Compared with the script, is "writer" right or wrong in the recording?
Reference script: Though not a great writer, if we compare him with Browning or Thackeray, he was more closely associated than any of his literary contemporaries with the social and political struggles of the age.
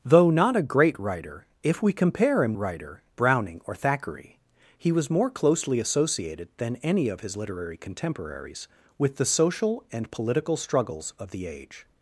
right